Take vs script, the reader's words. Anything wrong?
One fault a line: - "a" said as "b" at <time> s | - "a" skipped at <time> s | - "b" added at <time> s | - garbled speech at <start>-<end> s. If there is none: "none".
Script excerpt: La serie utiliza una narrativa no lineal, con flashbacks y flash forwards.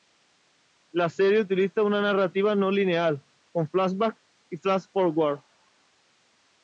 none